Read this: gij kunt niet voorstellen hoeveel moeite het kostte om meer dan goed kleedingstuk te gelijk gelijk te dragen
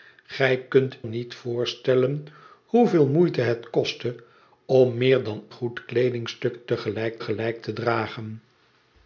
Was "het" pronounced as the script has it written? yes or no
yes